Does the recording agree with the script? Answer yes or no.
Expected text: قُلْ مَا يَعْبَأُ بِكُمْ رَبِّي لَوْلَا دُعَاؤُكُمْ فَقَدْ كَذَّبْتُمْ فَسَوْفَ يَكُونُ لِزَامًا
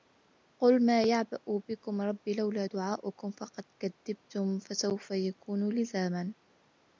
yes